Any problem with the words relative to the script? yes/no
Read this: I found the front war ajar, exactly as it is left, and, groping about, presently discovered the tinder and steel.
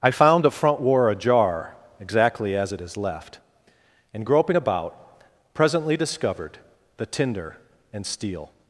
no